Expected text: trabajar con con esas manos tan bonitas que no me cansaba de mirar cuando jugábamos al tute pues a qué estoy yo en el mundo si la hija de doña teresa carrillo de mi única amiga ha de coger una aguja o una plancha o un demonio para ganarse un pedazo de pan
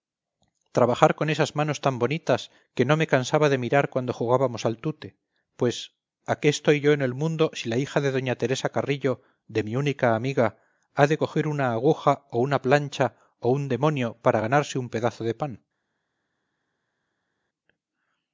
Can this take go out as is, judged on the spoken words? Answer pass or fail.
fail